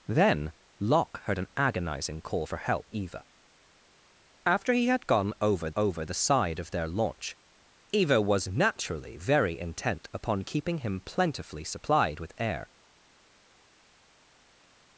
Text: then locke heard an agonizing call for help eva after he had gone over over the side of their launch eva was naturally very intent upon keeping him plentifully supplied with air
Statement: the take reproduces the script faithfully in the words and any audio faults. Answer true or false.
true